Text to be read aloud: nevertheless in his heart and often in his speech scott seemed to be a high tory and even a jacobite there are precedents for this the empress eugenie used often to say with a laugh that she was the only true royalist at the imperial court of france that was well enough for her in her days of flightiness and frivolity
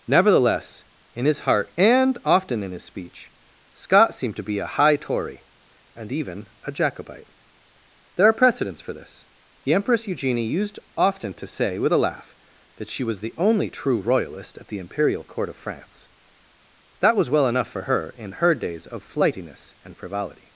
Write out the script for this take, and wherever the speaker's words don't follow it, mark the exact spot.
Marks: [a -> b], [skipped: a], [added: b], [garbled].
nevertheless in his heart and often in his speech scott seemed to be a high tory and even a jacobite there are precedents for this the empress eugenie used often to say with a laugh that she was the only true royalist at the imperial court of france that was well enough for her in her days of flightiness and frivolity